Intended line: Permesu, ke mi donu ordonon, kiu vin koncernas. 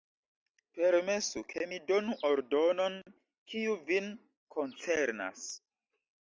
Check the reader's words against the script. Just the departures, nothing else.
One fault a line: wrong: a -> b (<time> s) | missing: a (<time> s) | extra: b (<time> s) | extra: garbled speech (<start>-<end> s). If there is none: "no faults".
no faults